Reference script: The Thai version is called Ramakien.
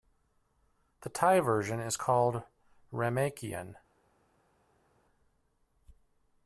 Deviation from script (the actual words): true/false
false